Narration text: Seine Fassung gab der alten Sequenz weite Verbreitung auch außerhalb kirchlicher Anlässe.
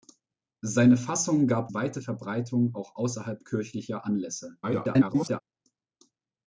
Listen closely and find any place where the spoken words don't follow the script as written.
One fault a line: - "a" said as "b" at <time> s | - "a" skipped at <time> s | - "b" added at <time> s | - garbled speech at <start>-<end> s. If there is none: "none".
- "der alten Sequenz" skipped at 1.7 s
- garbled speech at 4.6-5.4 s